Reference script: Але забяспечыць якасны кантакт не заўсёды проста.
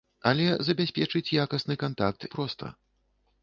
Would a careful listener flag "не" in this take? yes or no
yes